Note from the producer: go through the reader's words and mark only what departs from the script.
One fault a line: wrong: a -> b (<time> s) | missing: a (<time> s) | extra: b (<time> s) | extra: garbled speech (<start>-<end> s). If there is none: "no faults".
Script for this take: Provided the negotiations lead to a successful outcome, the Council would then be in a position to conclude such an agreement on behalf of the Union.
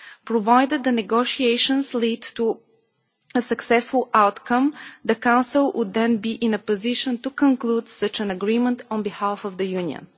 no faults